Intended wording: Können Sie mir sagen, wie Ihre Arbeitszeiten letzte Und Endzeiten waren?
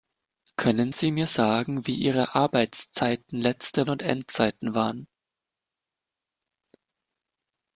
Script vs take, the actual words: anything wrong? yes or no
no